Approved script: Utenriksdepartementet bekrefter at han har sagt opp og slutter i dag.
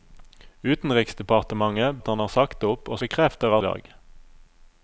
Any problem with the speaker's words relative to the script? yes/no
yes